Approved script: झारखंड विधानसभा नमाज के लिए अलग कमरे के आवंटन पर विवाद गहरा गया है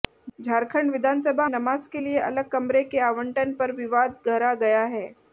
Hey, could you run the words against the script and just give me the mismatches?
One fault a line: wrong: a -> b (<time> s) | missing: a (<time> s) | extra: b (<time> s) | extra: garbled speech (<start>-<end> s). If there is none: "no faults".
no faults